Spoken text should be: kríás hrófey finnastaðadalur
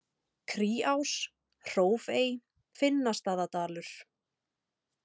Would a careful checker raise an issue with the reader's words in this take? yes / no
no